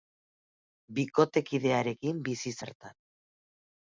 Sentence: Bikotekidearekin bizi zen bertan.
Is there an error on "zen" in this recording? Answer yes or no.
yes